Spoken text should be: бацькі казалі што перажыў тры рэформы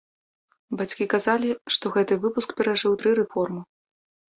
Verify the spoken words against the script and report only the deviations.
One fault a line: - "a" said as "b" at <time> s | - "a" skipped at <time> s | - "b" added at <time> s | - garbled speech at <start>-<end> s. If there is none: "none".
- "гэты выпуск" added at 2.0 s